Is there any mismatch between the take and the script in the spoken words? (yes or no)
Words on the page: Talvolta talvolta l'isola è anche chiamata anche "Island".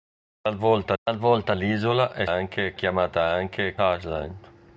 no